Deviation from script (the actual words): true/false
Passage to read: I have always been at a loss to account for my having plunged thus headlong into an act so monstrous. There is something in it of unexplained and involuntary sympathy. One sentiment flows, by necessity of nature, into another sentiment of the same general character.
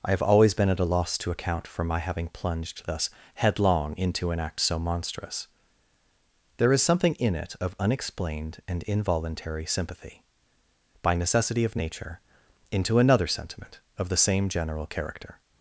true